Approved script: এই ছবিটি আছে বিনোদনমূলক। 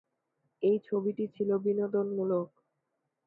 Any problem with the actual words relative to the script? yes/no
yes